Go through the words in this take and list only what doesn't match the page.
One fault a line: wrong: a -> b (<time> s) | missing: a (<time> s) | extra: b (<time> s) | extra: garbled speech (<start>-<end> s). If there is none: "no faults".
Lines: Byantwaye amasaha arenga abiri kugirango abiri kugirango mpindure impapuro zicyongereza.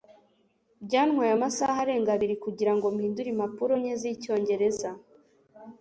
missing: abiri kugirango (2.8 s)
extra: nke (3.8 s)